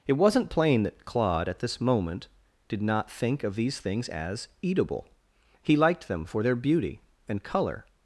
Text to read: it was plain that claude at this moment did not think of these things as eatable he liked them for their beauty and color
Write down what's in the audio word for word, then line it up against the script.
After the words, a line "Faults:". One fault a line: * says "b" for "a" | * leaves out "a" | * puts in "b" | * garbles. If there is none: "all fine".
it wasn't plain that claude at this moment did not think of these things as eatable he liked them for their beauty and color
Faults:
* says "wasn't" for "was"